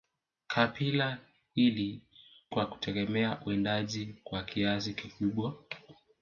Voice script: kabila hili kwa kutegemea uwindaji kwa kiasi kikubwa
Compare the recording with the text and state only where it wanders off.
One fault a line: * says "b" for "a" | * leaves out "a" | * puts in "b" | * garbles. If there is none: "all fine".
all fine